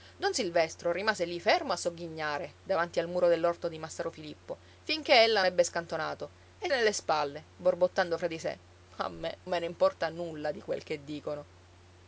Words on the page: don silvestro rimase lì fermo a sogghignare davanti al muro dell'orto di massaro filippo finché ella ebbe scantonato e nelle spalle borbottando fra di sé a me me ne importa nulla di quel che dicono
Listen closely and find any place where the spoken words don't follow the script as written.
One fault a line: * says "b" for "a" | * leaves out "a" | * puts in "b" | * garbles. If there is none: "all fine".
all fine